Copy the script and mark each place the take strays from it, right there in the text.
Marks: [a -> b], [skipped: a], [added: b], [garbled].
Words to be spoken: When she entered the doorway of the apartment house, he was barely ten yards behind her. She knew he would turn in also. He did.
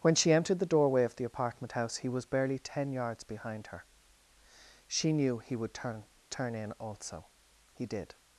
When she entered the doorway of the apartment house, he was barely ten yards behind her. She knew he would turn [added: turn] in also. He did.